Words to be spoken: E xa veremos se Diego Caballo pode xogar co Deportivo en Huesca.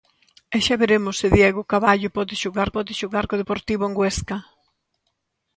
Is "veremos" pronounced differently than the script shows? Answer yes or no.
no